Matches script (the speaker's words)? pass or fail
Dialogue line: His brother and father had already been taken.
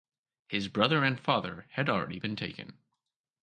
pass